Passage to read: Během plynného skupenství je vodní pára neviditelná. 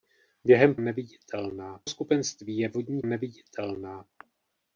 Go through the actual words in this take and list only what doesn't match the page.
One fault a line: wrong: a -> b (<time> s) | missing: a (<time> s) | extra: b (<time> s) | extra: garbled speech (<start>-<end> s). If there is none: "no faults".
wrong: plynného -> neviditelná (0.8 s)
missing: pára (3.0 s)